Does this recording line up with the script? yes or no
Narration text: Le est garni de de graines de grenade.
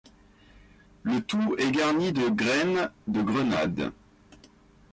no